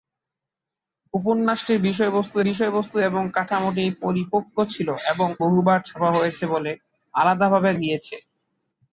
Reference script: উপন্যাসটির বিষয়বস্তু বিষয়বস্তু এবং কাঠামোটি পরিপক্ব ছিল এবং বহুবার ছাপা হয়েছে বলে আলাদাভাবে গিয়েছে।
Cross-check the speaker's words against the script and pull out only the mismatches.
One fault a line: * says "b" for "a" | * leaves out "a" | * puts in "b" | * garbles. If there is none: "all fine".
all fine